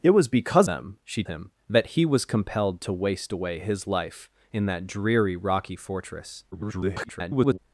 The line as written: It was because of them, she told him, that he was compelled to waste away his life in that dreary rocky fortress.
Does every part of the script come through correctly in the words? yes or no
no